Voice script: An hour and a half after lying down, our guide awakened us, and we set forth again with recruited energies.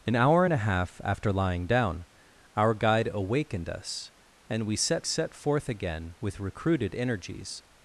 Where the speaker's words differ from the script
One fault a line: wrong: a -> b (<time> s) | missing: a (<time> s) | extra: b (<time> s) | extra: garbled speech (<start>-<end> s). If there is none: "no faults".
extra: set (5.0 s)